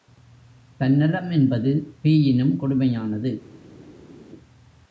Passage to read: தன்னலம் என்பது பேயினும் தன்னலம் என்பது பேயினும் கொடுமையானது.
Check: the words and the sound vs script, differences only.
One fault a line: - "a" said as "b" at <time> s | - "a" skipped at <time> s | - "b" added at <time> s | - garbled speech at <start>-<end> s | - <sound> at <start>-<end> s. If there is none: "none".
- "தன்னலம் என்பது பேயினும்" skipped at 2.5 s